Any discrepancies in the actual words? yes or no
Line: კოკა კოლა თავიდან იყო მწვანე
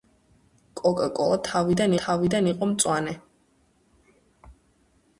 yes